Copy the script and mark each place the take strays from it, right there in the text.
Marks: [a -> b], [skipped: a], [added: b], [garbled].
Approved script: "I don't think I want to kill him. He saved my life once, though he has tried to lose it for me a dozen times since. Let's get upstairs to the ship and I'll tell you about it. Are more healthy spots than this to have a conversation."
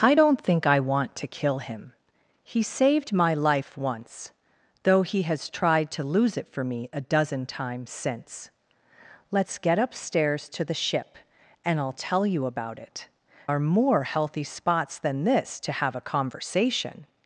"I don't think I want to kill him. He saved my life once, though he has tried to lose it for me a dozen times since. Let's get upstairs to the ship and I'll tell you about it. Are more healthy spots than this to have a conversation."